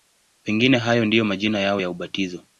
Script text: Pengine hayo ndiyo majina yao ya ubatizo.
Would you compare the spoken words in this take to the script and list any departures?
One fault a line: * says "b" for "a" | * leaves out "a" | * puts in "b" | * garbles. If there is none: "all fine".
all fine